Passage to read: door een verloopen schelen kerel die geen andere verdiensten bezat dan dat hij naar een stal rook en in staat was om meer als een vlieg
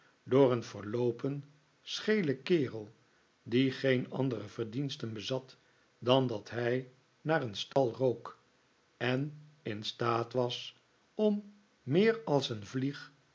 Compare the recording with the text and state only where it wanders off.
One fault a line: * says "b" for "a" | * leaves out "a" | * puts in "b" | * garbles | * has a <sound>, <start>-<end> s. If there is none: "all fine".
* has a dropout, 7.7-7.8 s